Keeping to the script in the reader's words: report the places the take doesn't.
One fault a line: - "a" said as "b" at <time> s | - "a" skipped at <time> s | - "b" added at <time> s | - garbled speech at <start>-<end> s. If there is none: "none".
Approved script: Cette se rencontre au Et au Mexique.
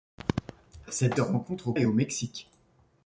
none